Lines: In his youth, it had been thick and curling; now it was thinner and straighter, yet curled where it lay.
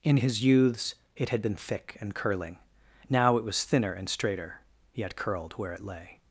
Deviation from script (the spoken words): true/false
true